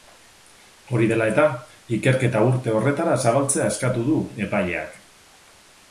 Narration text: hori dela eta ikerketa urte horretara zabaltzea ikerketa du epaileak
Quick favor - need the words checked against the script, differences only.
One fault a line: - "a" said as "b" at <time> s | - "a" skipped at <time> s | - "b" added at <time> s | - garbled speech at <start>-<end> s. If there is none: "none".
- "ikerketa" said as "eskatu" at 3.7 s